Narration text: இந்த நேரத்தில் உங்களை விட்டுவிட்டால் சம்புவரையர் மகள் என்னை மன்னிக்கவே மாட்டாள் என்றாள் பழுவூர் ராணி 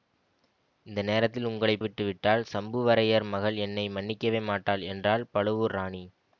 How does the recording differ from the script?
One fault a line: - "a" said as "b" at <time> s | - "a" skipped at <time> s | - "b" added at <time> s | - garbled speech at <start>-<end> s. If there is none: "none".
none